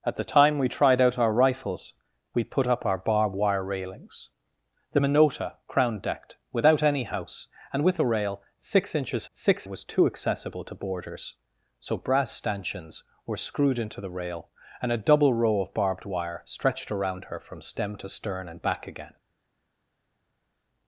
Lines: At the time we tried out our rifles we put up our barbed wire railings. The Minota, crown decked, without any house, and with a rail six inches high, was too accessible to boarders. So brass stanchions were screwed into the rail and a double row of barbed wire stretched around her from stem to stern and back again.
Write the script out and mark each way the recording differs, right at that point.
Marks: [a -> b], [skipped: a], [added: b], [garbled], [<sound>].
At the time we tried out our rifles we put up our barbed wire railings. The Minota, crown decked, without any house, and with a rail six inches [high, -> six] was too accessible to boarders. So brass stanchions were screwed into the rail and a double row of barbed wire stretched around her from stem to stern and back again.